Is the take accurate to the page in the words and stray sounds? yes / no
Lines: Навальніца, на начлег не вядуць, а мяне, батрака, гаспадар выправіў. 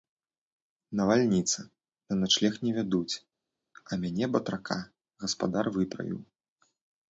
yes